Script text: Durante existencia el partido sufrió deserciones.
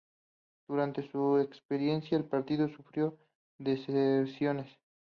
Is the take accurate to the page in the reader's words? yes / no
no